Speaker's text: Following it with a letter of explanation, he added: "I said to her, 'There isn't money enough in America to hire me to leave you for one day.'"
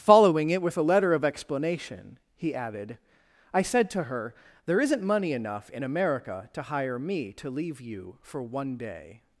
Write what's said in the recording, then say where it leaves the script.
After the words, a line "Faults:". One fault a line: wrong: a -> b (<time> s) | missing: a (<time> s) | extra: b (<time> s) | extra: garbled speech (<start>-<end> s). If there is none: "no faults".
Following it with a letter of explanation, he added: "I said to her, 'There isn't money enough in America to hire me to leave you for one day.'"
Faults:
no faults